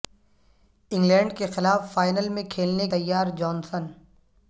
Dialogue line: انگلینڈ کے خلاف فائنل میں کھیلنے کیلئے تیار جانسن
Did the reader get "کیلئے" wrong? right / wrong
wrong